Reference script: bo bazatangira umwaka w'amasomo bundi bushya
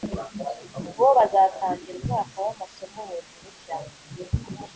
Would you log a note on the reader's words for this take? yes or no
no